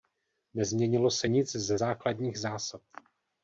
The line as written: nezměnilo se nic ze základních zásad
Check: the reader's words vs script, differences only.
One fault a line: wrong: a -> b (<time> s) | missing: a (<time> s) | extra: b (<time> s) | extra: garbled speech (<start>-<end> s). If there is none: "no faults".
no faults